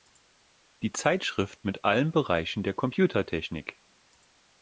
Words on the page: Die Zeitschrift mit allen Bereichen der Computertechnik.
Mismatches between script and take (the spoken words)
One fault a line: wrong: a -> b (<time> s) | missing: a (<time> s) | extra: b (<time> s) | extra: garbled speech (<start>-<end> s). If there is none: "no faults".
no faults